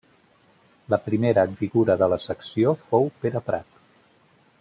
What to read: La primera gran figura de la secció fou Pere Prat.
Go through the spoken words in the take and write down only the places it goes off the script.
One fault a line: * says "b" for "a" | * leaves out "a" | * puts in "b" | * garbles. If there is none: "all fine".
* leaves out "gran"